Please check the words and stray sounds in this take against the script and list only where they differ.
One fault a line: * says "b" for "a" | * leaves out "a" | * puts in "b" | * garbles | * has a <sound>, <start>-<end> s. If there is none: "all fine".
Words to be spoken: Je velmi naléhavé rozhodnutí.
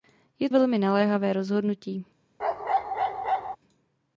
* has a bark, 2.4-3.6 s